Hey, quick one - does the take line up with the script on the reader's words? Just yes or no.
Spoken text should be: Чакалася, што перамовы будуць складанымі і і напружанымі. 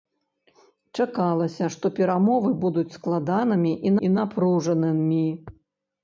yes